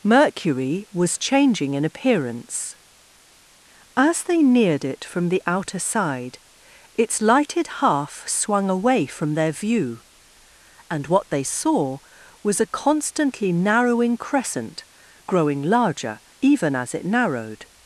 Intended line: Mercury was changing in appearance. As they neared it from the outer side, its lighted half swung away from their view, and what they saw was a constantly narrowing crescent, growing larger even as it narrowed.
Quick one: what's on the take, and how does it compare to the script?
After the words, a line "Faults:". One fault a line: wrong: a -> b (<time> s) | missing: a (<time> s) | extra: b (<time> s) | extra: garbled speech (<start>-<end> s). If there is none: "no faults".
Mercury was changing in appearance. As they neared it from the outer side, its lighted half swung away from their view, and what they saw was a constantly narrowing crescent, growing larger even as it narrowed.
Faults:
no faults